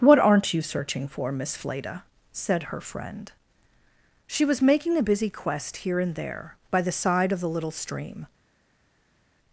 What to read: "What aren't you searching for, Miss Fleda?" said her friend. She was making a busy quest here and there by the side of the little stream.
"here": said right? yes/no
yes